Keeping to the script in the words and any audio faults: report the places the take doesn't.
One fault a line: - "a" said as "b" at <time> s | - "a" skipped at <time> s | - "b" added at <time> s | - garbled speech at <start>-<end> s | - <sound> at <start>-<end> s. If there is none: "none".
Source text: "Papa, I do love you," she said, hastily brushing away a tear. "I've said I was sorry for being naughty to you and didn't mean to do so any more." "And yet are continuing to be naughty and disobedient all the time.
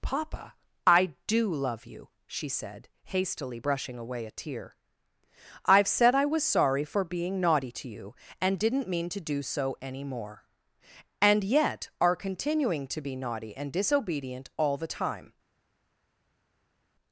none